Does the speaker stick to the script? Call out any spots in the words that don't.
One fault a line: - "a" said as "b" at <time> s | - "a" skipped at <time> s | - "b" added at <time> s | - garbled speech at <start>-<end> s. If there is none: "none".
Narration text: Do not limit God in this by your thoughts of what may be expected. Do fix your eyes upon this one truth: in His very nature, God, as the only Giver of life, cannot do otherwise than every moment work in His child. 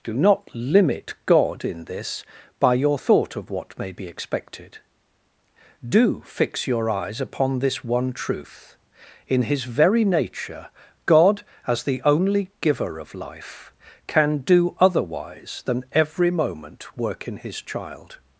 - "thoughts" said as "thought" at 2.9 s
- "cannot" said as "can" at 14.1 s